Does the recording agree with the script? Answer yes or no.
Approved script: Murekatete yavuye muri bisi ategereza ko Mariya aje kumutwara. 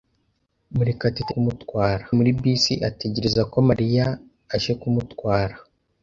no